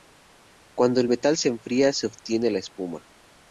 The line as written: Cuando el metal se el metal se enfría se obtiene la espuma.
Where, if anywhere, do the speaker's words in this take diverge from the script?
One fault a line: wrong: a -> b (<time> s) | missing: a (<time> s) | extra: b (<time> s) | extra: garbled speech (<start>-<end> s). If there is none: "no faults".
missing: el metal se (1.5 s)